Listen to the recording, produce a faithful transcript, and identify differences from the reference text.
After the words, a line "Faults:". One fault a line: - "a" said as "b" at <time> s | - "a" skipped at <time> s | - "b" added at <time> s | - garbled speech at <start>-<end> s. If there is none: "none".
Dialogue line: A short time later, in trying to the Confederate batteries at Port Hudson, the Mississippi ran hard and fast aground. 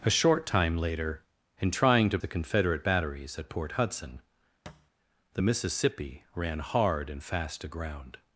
A short time later, in trying to the Confederate batteries at Port Hudson, the Mississippi ran hard and fast aground.
Faults:
none